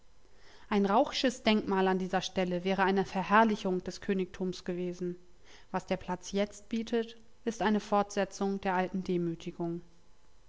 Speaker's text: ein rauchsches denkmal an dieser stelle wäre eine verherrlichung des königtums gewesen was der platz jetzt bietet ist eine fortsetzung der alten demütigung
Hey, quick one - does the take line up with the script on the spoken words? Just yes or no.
yes